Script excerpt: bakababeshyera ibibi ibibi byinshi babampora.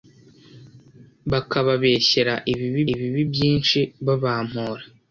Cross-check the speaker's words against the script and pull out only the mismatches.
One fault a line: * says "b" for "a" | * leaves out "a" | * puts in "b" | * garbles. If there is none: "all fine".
all fine